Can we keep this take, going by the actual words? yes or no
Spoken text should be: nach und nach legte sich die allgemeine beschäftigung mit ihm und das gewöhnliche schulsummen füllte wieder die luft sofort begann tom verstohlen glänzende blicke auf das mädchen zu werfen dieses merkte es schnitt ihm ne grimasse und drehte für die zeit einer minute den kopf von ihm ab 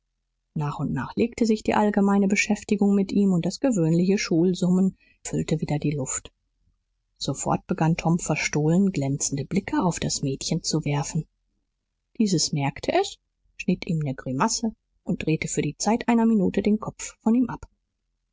yes